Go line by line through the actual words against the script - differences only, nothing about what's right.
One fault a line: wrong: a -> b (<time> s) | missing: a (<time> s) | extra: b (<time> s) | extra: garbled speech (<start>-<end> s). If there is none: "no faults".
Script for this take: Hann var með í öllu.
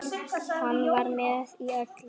no faults